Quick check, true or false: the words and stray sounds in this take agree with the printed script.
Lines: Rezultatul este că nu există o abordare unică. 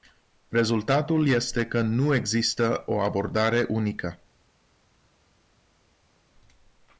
true